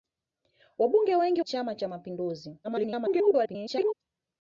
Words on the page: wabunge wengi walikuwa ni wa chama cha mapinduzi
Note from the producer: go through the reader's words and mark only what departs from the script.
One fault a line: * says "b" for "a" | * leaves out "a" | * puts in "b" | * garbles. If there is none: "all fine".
* leaves out "walikuwa ni wa"
* garbles